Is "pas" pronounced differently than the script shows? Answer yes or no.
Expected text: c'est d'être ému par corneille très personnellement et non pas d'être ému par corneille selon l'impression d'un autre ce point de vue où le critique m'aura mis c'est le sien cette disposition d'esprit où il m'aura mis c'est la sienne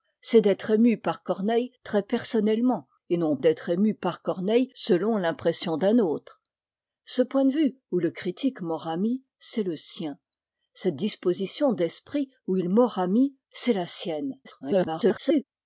yes